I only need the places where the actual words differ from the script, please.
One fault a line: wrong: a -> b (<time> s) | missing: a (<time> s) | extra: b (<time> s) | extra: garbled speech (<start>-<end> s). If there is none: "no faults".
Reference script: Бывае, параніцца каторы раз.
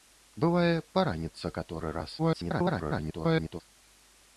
extra: garbled speech (2.2-3.6 s)